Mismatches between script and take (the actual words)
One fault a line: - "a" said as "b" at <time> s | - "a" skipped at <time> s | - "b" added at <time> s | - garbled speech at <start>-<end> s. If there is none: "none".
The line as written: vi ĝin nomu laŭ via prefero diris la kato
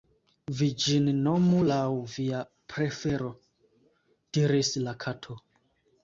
none